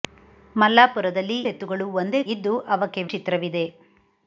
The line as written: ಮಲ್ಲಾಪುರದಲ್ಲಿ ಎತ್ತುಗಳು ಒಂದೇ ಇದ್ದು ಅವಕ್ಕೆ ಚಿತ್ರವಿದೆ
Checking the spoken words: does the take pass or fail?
pass